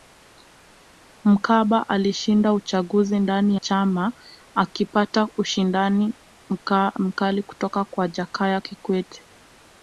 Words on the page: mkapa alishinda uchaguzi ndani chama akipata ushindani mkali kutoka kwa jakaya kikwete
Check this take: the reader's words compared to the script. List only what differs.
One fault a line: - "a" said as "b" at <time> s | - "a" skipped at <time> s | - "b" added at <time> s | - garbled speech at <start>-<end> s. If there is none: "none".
none